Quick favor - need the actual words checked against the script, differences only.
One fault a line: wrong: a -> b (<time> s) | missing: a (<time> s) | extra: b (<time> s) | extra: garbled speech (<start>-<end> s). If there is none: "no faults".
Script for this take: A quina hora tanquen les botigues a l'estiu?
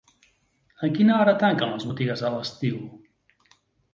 no faults